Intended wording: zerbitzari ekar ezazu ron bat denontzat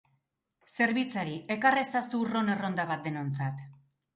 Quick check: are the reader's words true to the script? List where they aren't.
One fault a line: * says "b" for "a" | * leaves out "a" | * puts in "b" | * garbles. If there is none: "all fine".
* puts in "erronda"